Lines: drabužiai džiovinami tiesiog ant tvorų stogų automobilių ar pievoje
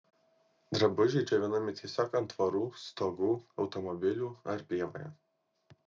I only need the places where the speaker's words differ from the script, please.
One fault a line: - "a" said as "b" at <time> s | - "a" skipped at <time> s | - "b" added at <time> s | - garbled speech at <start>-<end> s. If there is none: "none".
none